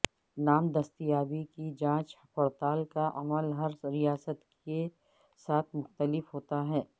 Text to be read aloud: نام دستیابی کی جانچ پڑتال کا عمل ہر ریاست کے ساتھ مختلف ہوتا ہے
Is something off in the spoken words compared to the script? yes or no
no